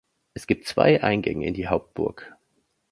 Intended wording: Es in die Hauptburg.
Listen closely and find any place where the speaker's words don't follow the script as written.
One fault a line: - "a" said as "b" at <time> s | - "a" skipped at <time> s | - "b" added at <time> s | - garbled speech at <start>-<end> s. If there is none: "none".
- "gibt zwei Eingänge" added at 0.5 s